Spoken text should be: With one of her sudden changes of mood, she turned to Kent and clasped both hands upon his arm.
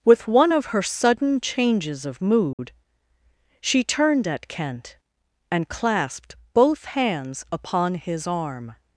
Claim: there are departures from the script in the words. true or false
true